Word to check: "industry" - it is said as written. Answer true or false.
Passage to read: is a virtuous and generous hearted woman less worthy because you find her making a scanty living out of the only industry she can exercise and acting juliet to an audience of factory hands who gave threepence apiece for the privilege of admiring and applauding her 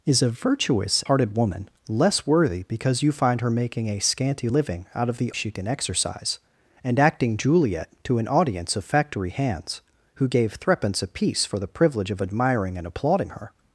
false